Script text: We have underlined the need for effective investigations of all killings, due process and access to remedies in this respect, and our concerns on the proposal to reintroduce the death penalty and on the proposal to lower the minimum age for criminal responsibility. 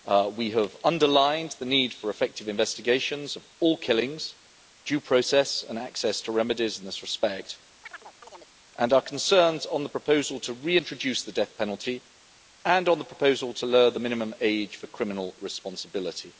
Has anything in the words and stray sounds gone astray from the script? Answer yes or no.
yes